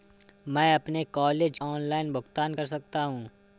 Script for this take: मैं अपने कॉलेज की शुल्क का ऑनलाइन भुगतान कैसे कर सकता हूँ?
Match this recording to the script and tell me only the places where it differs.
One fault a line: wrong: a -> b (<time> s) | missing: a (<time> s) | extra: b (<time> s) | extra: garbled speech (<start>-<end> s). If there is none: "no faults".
missing: की शुल्क का (1.6 s)
missing: कैसे (2.5 s)